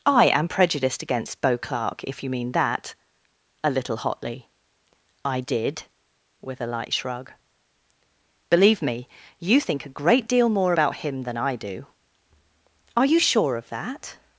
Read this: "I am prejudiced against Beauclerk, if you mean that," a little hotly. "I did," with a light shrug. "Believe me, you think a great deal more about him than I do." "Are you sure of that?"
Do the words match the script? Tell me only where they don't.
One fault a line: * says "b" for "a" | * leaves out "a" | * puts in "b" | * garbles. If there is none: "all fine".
all fine